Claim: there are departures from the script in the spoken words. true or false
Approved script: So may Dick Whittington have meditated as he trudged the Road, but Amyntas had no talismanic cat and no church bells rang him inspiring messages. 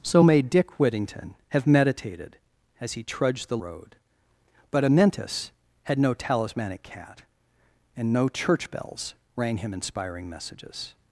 false